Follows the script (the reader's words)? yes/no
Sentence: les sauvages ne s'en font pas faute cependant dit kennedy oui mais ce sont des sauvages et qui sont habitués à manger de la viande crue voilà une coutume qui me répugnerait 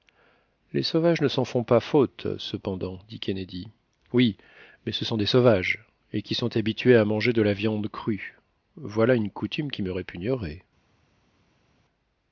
yes